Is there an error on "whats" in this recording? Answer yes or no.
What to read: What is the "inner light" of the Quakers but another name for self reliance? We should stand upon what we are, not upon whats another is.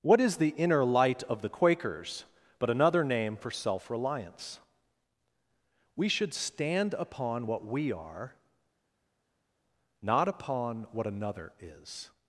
yes